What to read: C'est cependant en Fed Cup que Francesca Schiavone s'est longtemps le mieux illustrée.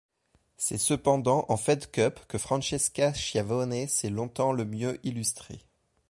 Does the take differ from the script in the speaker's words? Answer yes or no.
no